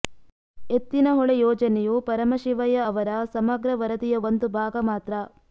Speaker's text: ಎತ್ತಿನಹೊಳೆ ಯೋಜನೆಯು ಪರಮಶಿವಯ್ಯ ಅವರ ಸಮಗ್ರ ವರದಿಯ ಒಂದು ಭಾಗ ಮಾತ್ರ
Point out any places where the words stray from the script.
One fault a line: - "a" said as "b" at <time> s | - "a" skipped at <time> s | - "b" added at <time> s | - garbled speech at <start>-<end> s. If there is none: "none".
none